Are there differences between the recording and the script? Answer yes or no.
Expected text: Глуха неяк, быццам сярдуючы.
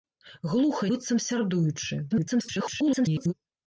yes